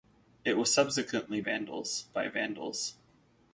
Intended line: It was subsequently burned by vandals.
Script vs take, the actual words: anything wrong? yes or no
yes